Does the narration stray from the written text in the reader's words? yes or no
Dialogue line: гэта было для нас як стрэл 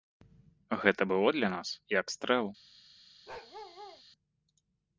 no